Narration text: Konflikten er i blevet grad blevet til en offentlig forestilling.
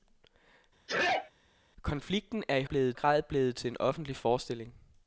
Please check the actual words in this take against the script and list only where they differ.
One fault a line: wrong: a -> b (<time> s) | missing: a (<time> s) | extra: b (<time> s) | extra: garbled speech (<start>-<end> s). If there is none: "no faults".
no faults